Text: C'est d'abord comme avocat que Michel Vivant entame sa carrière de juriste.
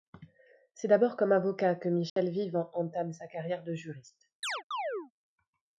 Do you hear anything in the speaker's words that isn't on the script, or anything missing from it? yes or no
no